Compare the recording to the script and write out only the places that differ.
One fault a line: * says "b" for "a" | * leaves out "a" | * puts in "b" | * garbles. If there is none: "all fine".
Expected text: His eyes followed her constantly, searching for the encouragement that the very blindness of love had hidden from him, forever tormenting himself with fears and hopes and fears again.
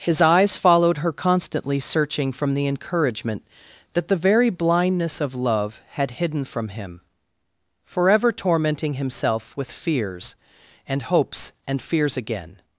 * says "from" for "for"